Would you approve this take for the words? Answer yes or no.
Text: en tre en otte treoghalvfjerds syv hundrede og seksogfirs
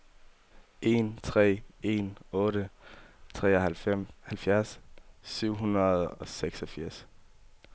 yes